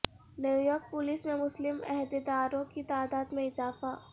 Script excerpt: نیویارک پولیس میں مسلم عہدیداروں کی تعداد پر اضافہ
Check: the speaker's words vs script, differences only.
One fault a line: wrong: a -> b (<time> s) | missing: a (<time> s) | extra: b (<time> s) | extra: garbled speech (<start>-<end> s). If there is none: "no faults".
wrong: پر -> میں (3.3 s)